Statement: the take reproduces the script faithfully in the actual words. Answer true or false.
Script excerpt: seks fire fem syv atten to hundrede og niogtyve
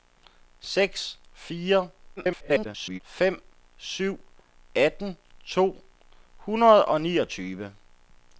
false